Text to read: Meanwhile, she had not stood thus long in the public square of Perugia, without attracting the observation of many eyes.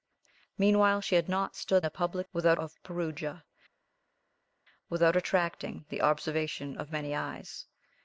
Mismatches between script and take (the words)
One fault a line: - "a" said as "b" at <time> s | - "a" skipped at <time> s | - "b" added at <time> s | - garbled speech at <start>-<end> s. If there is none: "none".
- "thus long in" skipped at 1.9 s
- "square" said as "without" at 2.3 s